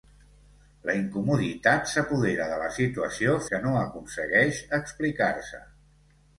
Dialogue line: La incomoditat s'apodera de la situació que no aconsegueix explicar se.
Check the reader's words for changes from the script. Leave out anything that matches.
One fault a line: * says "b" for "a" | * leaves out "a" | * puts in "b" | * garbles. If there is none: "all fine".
all fine